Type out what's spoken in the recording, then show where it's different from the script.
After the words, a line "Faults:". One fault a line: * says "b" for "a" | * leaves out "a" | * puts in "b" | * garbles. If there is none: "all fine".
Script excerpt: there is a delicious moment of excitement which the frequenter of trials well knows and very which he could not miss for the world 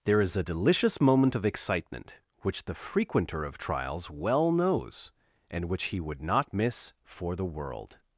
there is a delicious moment of excitement which the frequenter of trials well knows and which he would not miss for the world
Faults:
* leaves out "very"
* says "would" for "could"